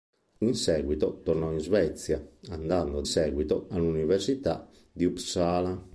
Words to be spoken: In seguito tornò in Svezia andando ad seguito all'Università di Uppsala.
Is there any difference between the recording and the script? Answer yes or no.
no